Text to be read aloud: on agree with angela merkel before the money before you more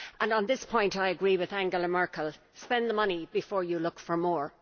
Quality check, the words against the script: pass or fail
fail